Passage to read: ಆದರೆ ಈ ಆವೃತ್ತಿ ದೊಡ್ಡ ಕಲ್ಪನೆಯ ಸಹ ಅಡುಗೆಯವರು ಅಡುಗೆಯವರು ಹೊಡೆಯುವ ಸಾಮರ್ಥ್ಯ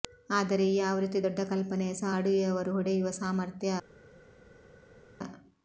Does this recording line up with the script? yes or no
no